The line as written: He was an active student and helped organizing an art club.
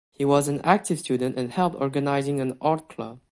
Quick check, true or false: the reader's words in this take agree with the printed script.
true